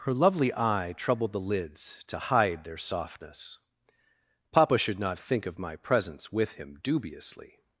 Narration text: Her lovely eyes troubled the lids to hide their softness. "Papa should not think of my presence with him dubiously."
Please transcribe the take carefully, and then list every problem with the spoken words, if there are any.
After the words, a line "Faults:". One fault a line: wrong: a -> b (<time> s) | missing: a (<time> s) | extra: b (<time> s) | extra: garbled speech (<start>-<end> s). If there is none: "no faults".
Her lovely eye troubled the lids to hide their softness. "Papa should not think of my presence with him dubiously."
Faults:
wrong: eyes -> eye (0.6 s)